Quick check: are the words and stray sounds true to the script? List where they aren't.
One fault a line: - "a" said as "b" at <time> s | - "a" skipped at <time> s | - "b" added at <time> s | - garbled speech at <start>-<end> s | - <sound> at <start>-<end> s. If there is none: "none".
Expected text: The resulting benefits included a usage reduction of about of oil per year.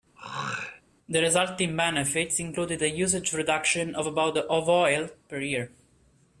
- throat clearing at 0.2-0.8 s